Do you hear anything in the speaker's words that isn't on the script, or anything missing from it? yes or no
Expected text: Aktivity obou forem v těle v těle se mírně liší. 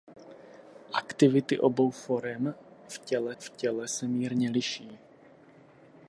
no